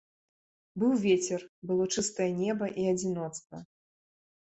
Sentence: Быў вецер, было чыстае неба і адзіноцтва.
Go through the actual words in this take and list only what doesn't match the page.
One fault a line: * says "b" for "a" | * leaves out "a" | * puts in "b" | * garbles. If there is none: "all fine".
all fine